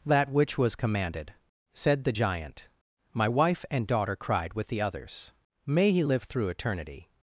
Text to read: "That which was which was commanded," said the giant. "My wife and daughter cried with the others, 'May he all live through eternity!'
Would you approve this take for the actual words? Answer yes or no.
no